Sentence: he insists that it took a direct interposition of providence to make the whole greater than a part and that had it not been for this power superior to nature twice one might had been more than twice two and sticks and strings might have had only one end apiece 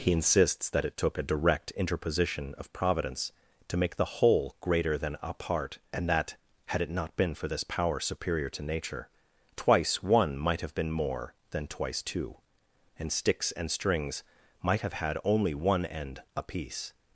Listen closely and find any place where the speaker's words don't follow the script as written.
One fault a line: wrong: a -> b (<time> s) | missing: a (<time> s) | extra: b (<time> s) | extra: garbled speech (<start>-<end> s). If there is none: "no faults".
wrong: had -> have (10.6 s)